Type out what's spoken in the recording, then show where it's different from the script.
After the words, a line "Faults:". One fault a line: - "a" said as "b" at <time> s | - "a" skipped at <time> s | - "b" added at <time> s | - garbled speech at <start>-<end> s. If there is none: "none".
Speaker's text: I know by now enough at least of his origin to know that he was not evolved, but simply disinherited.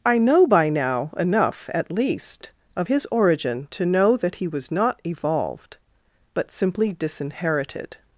I know by now enough at least of his origin to know that he was not evolved, but simply disinherited.
Faults:
none